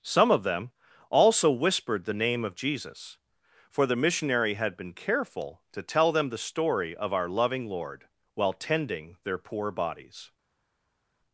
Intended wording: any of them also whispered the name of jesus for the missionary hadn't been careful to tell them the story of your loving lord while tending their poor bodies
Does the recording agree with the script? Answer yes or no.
no